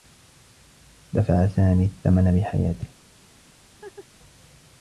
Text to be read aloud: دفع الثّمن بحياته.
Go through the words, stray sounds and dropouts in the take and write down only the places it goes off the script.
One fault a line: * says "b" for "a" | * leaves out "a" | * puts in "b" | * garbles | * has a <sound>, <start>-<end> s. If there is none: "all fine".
* puts in "سامي"
* has a laugh, 3.8-4.1 s